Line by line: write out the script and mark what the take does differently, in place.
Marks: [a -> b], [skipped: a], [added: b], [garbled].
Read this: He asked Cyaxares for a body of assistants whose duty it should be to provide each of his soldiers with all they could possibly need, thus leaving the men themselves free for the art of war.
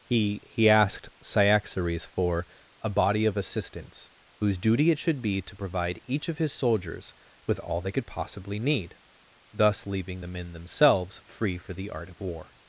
He [added: he] asked Cyaxares for a body of assistants whose duty it should be to provide each of his soldiers with all they could possibly need, thus leaving the men themselves free for the art of war.